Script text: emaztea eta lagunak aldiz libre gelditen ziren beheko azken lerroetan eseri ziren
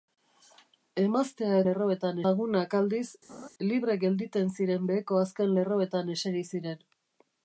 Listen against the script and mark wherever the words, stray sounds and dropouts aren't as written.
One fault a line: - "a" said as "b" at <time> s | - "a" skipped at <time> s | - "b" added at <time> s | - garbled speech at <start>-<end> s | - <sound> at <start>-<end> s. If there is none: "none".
- "eta" said as "lerroetan" at 1.7 s
- laugh at 3.3-3.5 s